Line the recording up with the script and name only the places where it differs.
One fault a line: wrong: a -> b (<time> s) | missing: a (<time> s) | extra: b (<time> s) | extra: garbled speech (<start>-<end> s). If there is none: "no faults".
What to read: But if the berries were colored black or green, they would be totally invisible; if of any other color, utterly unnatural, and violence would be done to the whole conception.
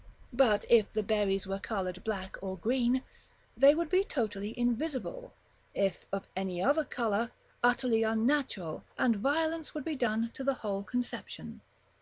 no faults